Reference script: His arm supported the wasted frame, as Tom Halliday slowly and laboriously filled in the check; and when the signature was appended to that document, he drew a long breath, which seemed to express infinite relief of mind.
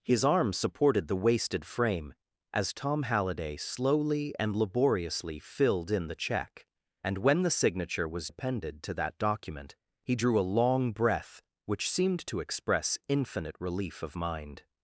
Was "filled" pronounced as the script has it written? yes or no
yes